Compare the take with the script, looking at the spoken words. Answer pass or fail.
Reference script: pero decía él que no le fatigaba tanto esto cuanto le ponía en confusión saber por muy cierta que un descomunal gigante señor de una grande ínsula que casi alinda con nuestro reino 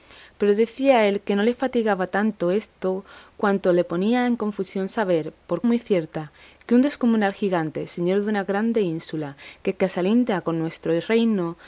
pass